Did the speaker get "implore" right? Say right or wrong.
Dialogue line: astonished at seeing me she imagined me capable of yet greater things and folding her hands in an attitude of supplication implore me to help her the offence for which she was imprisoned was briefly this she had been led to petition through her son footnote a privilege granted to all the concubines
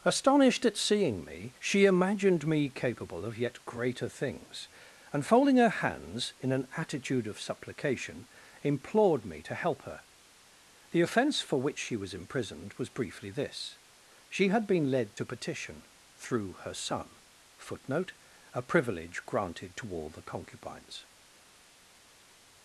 wrong